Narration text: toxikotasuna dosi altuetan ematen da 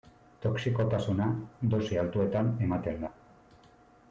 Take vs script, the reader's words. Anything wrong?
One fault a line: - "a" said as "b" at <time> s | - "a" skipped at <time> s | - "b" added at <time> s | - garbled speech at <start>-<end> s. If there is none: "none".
none